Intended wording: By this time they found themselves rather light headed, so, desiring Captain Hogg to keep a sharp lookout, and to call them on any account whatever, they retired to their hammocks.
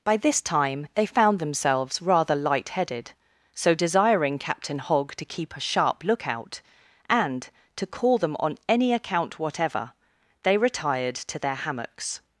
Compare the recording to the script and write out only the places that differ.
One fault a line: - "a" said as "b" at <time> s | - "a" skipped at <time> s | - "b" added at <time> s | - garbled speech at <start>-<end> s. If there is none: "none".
none